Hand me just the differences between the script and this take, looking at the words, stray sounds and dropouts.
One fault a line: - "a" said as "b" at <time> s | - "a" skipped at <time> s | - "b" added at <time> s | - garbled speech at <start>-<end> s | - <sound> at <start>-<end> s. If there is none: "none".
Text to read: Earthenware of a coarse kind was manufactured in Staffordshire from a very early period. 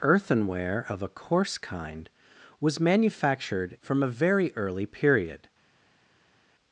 - "in Staffordshire" skipped at 3.8 s